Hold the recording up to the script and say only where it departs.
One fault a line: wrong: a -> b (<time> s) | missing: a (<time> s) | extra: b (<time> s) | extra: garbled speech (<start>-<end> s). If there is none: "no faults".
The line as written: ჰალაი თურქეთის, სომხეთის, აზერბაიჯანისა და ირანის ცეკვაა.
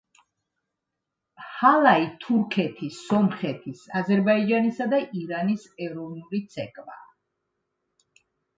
extra: ეროვნული (5.9 s)